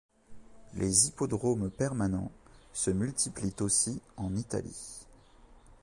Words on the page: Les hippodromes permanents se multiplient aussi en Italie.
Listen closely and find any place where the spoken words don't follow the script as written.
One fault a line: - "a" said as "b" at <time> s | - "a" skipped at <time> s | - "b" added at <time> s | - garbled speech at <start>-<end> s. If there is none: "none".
none